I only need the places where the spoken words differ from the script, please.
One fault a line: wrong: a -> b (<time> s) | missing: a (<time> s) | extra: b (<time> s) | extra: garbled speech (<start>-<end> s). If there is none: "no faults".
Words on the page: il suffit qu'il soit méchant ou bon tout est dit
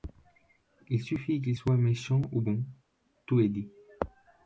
no faults